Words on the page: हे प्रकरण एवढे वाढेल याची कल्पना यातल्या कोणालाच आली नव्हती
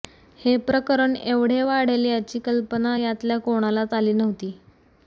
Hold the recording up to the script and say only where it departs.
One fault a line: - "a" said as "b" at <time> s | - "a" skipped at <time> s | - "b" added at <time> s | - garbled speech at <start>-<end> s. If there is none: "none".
none